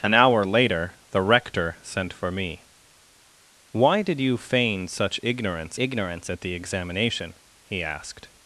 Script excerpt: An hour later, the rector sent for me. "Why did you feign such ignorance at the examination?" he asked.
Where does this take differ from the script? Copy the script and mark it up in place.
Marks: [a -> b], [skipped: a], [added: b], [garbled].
An hour later, the rector sent for me. "Why did you feign such ignorance [added: ignorance] at the examination?" he asked.